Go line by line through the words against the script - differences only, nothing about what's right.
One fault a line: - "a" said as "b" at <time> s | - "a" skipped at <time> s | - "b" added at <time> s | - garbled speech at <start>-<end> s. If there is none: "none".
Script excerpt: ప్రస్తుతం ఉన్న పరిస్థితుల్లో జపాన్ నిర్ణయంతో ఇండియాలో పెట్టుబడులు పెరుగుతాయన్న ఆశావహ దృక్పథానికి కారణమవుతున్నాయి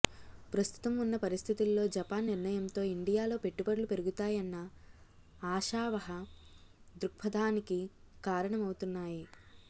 none